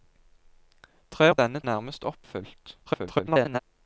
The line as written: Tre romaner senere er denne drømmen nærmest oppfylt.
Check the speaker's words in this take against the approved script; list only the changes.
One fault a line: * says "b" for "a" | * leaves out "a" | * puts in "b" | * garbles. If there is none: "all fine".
* leaves out "romaner senere"
* leaves out "drømmen"
* garbles